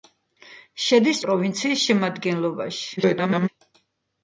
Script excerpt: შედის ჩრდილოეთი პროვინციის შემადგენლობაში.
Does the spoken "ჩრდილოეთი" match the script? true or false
false